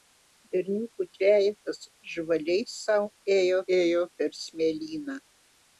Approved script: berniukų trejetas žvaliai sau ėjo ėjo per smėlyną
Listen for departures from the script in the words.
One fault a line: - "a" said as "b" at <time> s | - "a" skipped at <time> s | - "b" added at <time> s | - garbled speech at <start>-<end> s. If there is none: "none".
none